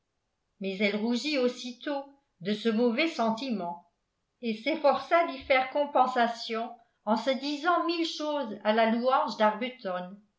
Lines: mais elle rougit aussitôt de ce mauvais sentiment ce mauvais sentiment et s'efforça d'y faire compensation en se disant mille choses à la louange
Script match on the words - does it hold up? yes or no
no